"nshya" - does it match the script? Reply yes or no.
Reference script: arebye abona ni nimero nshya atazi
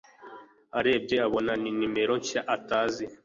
yes